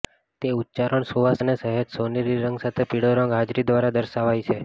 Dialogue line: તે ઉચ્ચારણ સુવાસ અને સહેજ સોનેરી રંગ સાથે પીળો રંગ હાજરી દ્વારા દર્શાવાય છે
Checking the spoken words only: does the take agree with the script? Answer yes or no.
yes